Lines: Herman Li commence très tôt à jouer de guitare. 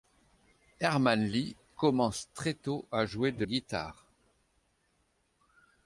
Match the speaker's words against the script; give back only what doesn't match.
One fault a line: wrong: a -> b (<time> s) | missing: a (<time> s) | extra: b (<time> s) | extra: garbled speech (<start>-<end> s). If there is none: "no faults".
no faults